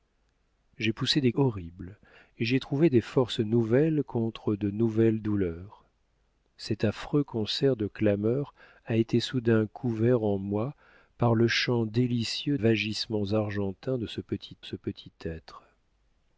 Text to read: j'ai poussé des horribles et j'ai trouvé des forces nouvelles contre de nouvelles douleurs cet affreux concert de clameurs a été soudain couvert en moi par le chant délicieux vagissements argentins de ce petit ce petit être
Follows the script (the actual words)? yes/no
yes